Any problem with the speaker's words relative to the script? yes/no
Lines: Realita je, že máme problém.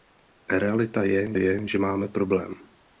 yes